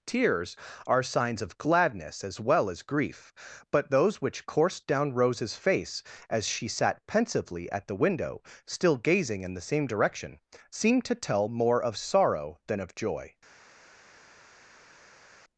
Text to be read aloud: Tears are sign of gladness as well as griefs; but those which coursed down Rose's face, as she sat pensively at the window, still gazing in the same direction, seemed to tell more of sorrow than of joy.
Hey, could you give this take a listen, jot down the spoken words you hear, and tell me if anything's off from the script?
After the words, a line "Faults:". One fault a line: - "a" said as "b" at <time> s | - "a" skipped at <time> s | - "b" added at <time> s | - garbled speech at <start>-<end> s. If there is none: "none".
Tears are signs of gladness as well as grief; but those which coursed down Rose's face, as she sat pensively at the window, still gazing in the same direction, seemed to tell more of sorrow than of joy.
Faults:
- "sign" said as "signs" at 1.0 s
- "griefs" said as "grief" at 2.8 s